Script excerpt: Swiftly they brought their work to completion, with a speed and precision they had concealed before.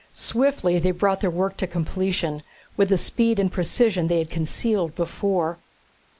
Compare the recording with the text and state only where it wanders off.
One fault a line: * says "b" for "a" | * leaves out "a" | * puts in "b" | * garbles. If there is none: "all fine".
all fine